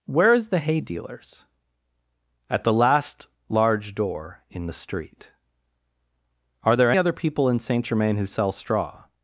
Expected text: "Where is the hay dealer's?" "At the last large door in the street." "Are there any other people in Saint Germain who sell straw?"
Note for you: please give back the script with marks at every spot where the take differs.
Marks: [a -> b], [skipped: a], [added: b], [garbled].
"Where is the hay dealer's?" "At the last large door in the street." "Are there [skipped: any] other people in Saint Germain who sell straw?"